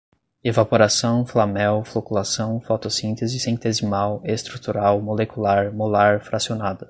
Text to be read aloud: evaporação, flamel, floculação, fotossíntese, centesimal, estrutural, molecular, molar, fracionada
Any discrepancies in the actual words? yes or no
no